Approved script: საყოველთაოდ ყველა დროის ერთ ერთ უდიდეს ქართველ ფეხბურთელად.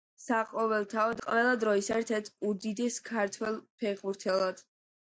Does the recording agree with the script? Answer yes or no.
yes